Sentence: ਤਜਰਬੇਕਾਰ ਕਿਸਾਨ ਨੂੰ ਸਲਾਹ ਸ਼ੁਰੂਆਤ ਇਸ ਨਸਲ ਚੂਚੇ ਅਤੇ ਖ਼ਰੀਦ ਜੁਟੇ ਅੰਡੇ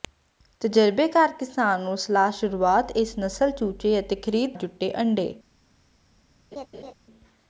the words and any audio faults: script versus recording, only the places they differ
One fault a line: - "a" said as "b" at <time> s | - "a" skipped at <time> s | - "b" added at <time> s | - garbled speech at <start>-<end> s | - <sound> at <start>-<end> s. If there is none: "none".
- laugh at 6.5-6.9 s